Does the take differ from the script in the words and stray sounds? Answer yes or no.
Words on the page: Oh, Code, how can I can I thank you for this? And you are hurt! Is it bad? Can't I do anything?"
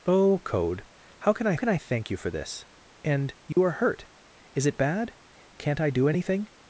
yes